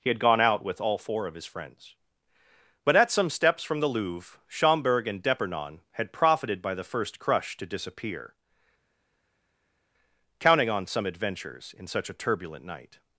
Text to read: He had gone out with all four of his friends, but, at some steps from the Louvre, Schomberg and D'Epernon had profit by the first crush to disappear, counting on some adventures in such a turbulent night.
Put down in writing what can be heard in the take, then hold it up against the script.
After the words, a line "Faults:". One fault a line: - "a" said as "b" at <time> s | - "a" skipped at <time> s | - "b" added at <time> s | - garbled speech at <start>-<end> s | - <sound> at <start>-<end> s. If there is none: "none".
He had gone out with all four of his friends, but, at some steps from the Louvre, Schomberg and D'Epernon had profited by the first crush to disappear, counting on some adventures in such a turbulent night.
Faults:
- "profit" said as "profited" at 6.1 s